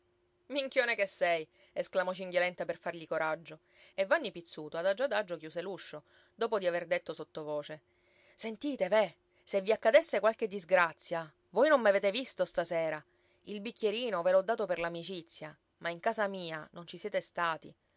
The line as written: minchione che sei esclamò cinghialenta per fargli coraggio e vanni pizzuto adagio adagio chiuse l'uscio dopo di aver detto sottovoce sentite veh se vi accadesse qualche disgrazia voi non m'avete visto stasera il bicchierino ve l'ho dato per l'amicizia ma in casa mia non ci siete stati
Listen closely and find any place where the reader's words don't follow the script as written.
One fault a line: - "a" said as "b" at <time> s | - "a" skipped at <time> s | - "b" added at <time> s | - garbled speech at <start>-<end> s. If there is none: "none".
none